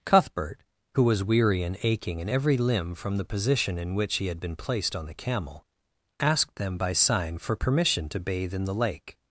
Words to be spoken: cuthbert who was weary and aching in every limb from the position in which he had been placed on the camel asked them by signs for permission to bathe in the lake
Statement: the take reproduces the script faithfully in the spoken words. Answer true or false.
false